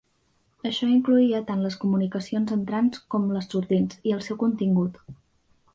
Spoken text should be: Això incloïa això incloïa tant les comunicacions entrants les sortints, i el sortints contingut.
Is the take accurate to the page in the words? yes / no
no